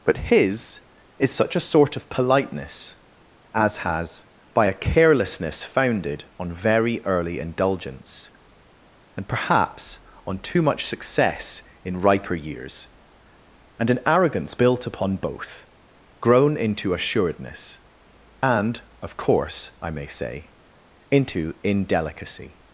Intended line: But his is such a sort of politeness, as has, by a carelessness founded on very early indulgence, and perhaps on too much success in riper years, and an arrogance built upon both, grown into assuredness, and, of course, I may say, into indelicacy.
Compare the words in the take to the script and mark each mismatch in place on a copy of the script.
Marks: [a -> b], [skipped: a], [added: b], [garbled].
But his is such a sort of politeness, as has, by a carelessness founded on very early indulgence, and perhaps on too much success in riper years, and an arrogance built upon both, grown into assuredness, and, of course, I may say, into indelicacy.